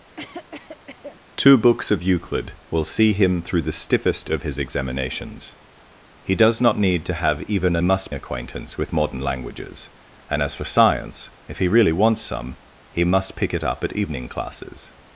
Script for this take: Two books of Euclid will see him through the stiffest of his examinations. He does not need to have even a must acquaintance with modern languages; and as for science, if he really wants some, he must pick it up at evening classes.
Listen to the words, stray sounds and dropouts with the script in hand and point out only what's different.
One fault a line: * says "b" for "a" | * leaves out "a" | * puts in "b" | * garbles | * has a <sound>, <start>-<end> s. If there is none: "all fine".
* has a cough, 0.2-1.2 s